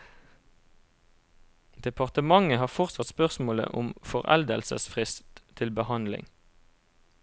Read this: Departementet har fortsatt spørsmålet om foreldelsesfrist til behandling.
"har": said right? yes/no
yes